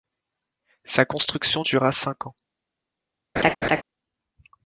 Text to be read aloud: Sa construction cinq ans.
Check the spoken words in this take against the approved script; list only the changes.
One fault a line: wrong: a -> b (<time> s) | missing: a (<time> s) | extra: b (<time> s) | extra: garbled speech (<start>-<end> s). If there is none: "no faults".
extra: dura (1.6 s)